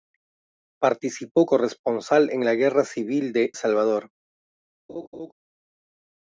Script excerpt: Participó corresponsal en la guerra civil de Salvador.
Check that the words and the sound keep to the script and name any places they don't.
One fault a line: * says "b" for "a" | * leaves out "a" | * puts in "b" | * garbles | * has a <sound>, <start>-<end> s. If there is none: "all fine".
* has a laugh, 4.9-5.3 s